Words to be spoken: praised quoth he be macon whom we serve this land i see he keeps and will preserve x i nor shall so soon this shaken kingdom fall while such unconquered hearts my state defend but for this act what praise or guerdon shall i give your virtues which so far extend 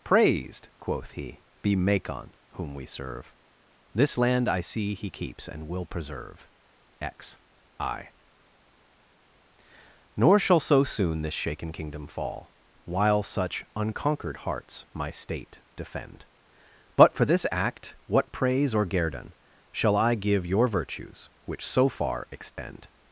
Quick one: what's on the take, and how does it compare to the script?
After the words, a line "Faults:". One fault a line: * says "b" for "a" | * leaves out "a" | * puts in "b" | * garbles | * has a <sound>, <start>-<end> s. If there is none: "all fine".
praised quoth he be macon whom we serve this land i see he keeps and will preserve x i nor shall so soon this shaken kingdom fall while such unconquered hearts my state defend but for this act what praise or guerdon shall i give your virtues which so far extend
Faults:
* has a dropout, 22.5-22.6 s